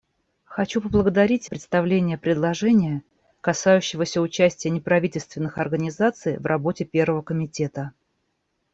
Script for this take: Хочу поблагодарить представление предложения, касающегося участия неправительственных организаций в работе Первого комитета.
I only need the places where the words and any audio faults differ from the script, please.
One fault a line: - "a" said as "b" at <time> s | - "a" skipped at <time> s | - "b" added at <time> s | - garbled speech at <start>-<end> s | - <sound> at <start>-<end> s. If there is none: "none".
none